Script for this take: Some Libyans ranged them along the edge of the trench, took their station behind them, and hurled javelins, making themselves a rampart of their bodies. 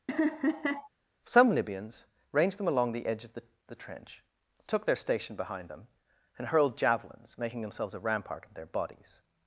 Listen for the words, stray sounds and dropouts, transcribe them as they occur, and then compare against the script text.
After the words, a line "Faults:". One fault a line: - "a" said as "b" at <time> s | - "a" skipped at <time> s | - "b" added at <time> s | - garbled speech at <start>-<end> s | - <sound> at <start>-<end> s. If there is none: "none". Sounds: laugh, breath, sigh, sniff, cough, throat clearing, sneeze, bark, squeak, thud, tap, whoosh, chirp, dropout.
Some Libyans ranged them along the edge of the the trench, took their station behind them, and hurled javelins, making themselves a rampart of their bodies.
Faults:
- laugh at 0.1-0.9 s
- "the" added at 3.7 s